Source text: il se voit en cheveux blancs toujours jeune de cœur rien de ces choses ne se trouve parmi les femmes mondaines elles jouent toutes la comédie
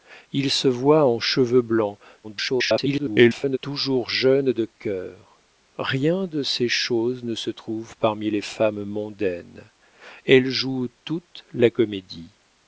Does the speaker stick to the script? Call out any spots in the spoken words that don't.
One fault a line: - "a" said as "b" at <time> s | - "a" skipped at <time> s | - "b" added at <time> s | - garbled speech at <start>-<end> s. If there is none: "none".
- garbled speech at 2.2-3.6 s